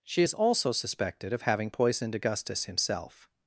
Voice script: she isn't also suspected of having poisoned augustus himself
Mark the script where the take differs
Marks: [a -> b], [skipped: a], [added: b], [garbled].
she [isn't -> is] also suspected of having poisoned augustus himself